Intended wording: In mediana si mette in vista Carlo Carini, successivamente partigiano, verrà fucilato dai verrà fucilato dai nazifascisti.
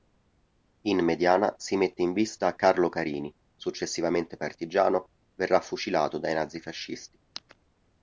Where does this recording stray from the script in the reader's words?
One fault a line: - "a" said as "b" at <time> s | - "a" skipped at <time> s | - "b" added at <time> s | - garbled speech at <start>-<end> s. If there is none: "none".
- "verrà fucilato dai" skipped at 6.3 s